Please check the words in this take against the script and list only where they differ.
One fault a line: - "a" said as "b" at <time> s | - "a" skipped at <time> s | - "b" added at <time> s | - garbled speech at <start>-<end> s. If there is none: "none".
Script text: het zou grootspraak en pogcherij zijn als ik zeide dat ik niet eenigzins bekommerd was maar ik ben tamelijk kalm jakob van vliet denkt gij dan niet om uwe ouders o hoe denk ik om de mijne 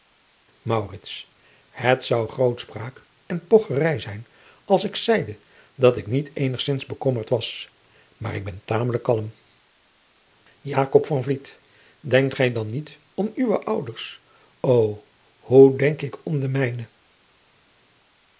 none